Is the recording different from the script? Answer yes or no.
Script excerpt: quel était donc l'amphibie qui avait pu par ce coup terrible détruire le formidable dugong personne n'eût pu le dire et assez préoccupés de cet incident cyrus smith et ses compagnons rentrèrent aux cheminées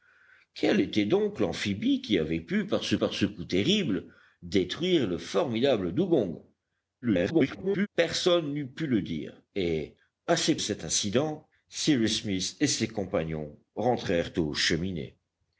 yes